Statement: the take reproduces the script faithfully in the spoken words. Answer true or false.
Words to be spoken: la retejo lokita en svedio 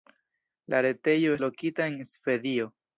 true